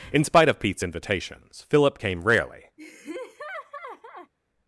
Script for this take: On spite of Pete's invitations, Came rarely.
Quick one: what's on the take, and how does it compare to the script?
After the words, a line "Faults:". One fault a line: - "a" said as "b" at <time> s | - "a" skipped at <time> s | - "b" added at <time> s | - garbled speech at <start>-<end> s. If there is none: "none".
In spite of Pete's invitations, Philip came rarely.
Faults:
- "On" said as "In" at 0.1 s
- "Philip" added at 1.7 s